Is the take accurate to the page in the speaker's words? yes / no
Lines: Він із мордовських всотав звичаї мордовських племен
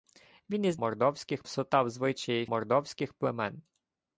yes